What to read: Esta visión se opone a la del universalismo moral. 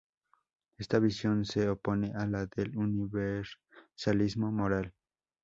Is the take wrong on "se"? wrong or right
right